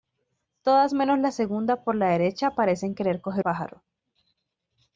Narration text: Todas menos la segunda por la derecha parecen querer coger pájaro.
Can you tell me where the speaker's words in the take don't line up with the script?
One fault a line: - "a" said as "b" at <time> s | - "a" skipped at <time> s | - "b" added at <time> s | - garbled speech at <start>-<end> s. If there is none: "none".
none